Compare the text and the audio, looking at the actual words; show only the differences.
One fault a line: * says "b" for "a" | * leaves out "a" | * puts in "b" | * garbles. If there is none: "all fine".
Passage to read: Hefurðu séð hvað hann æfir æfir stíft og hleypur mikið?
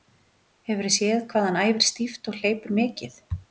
* leaves out "æfir"